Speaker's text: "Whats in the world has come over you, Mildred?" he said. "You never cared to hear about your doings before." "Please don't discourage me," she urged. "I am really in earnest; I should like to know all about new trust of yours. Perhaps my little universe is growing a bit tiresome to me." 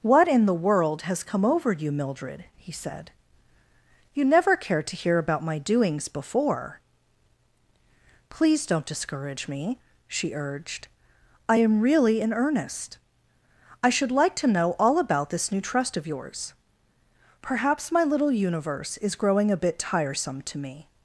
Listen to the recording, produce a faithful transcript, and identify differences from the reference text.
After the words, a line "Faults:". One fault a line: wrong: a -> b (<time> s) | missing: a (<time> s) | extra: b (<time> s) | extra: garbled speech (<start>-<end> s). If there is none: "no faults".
"What in the world has come over you, Mildred?" he said. "You never cared to hear about my doings before." "Please don't discourage me," she urged. "I am really in earnest; I should like to know all about this new trust of yours. Perhaps my little universe is growing a bit tiresome to me."
Faults:
wrong: Whats -> What (0.0 s)
wrong: your -> my (5.4 s)
extra: this (15.3 s)